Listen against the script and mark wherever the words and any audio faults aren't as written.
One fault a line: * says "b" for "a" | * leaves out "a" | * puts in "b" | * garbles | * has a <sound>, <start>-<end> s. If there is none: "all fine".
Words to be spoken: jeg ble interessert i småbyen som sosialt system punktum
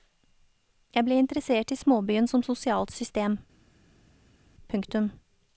all fine